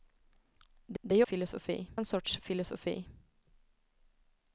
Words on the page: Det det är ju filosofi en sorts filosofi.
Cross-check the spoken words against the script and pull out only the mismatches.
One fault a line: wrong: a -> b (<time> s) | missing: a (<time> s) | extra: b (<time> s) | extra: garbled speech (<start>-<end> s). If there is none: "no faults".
no faults